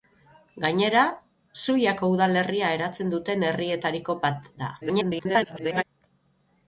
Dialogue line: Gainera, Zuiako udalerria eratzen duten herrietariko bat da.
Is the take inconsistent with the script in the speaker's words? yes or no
yes